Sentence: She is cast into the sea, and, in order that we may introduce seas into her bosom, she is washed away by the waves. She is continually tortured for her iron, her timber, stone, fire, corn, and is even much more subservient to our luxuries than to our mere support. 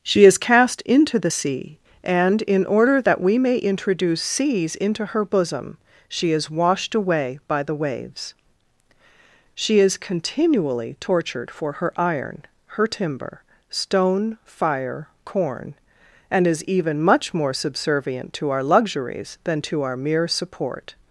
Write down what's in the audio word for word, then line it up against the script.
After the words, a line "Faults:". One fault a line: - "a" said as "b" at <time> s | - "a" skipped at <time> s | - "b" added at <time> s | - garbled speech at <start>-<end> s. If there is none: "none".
She is cast into the sea, and, in order that we may introduce seas into her bosom, she is washed away by the waves. She is continually tortured for her iron, her timber, stone, fire, corn, and is even much more subservient to our luxuries than to our mere support.
Faults:
none